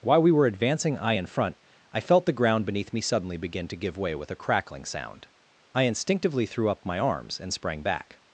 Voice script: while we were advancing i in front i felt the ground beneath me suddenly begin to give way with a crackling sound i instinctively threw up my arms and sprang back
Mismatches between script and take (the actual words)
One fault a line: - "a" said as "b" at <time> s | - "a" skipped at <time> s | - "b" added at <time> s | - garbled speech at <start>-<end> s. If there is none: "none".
none